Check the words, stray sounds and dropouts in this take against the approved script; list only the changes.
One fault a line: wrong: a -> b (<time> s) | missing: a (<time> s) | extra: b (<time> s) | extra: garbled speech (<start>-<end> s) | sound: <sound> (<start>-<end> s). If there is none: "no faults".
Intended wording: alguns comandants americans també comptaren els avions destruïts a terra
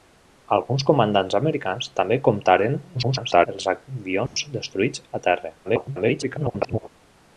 extra: garbled speech (2.9-3.5 s)
sound: dropout (4.3-4.4 s)
extra: garbled speech (5.6-6.9 s)